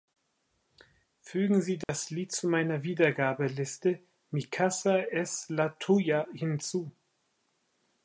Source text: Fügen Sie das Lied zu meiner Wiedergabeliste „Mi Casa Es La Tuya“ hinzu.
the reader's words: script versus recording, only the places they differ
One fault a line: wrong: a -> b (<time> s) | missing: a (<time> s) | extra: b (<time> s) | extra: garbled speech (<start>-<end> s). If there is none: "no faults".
no faults